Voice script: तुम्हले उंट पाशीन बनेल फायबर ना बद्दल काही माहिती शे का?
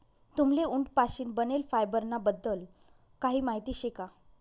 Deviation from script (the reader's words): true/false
false